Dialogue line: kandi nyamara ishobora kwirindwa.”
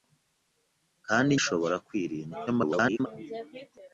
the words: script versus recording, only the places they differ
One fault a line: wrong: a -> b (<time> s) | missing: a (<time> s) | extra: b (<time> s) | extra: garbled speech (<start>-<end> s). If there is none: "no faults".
missing: nyamara (1.3 s)
extra: garbled speech (2.5-3.1 s)